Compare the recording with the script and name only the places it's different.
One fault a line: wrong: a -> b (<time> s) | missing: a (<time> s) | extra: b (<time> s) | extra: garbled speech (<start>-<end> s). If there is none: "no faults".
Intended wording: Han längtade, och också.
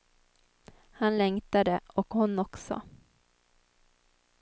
extra: hon (2.1 s)